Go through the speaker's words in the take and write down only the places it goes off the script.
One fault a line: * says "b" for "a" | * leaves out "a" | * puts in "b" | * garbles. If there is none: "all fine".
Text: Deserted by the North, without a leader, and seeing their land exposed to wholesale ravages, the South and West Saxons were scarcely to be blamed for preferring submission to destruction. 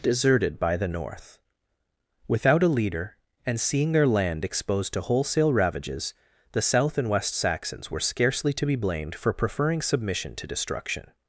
all fine